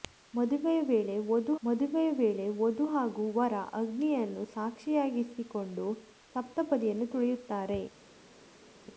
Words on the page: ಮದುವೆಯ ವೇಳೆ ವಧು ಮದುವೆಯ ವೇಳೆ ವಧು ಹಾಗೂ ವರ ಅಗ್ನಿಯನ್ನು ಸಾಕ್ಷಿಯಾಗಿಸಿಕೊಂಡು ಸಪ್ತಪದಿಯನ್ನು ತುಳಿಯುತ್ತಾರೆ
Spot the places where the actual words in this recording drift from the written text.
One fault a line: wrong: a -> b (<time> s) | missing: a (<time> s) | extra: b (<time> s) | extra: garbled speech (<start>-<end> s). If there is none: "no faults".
no faults